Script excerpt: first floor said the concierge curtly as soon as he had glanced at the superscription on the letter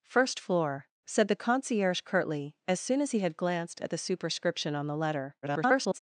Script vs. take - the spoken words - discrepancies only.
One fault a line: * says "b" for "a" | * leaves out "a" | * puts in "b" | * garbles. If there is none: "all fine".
* garbles